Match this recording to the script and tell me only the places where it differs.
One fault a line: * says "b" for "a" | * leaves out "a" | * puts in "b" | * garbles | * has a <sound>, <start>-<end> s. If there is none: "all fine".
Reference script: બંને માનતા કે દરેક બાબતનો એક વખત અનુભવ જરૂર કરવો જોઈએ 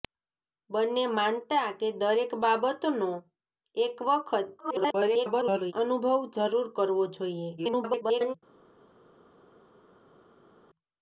* garbles
* garbles